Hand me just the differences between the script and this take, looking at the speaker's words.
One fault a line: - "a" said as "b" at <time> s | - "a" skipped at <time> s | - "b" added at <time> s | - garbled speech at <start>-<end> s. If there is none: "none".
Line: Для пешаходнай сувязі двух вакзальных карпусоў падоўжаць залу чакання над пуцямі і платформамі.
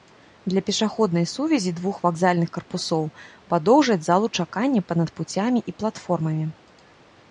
- "па" added at 4.9 s